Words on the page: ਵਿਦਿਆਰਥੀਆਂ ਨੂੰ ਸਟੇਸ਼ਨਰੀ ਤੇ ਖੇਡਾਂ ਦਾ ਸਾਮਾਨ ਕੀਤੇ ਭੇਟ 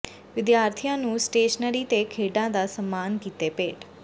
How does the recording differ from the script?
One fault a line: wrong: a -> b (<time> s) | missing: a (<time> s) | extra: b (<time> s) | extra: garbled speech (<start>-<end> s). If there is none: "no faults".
no faults